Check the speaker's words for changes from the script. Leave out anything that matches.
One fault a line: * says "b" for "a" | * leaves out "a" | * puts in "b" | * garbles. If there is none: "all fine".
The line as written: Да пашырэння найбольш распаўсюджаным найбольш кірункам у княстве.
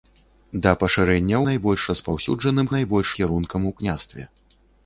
all fine